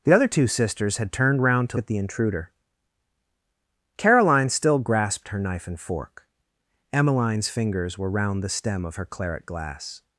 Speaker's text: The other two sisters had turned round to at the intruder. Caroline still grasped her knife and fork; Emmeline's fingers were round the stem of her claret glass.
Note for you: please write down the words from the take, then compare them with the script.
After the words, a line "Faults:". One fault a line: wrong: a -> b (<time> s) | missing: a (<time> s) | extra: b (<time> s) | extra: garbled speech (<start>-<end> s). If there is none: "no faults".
The other two sisters had turned round to at the intruder. Caroline still grasped her knife and fork; Emmeline's fingers were round the stem of her claret glass.
Faults:
no faults